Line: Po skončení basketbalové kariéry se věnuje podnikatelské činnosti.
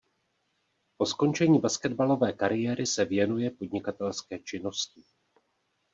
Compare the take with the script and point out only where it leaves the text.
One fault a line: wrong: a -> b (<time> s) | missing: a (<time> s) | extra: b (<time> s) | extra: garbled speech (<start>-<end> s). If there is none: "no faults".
no faults